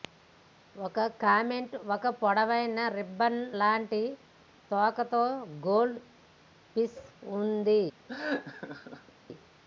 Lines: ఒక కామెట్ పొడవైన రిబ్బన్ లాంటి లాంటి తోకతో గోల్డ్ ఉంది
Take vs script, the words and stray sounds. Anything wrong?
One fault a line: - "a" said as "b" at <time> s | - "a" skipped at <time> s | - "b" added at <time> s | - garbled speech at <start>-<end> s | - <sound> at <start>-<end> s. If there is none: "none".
- "ఒక" added at 1.9 s
- "లాంటి" skipped at 4.0 s
- "ఫిష్" added at 6.8 s
- laugh at 8.1-9.1 s